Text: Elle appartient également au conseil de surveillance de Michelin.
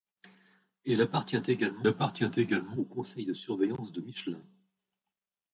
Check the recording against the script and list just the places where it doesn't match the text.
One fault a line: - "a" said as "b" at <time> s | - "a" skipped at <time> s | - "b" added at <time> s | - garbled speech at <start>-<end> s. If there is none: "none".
- "appartient également" added at 1.9 s